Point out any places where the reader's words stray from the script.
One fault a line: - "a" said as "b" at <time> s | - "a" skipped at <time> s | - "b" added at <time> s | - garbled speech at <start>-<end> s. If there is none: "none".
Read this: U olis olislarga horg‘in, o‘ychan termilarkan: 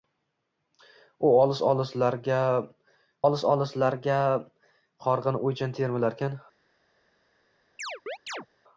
- "olis olislarga" added at 3.2 s